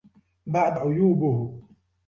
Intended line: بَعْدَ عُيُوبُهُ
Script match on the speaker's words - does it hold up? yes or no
yes